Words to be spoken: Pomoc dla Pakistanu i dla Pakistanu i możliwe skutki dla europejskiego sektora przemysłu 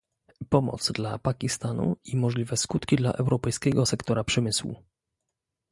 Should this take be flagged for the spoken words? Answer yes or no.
yes